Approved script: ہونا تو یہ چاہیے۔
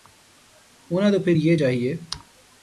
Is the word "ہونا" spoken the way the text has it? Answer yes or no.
yes